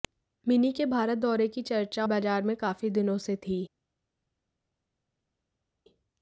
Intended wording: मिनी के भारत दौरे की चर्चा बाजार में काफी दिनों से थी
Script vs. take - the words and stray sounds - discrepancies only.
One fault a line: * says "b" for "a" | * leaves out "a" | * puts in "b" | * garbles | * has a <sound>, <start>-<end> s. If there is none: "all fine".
all fine